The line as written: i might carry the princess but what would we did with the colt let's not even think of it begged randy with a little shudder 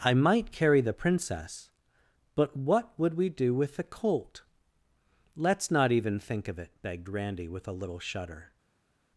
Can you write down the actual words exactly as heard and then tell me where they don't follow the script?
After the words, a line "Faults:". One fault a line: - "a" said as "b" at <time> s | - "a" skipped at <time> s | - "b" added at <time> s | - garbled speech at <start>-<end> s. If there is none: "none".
i might carry the princess but what would we do with the colt let's not even think of it begged randy with a little shudder
Faults:
- "did" said as "do" at 3.3 s